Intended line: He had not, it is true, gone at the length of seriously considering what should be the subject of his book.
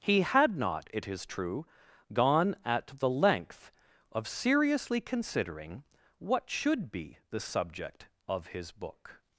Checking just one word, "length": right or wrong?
right